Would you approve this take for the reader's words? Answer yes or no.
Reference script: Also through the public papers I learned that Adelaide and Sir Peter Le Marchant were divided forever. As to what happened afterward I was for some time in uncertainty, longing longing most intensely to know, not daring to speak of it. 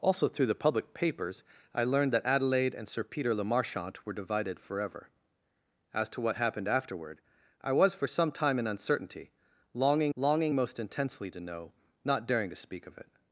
yes